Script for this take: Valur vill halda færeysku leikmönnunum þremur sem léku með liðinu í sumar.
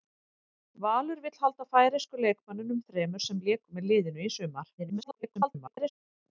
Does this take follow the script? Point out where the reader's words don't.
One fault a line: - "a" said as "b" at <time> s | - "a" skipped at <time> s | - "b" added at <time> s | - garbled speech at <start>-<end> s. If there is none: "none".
- garbled speech at 4.8-5.9 s